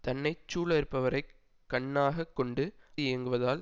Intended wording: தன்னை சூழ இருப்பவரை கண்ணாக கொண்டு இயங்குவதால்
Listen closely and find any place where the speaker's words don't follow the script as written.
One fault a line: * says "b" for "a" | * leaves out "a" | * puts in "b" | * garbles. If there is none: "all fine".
all fine